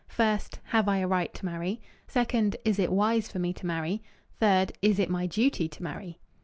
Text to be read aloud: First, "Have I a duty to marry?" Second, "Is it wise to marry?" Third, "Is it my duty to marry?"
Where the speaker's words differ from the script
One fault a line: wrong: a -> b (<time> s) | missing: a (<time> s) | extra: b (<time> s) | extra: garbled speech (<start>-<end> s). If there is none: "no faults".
wrong: duty -> right (1.1 s)
extra: for me (3.3 s)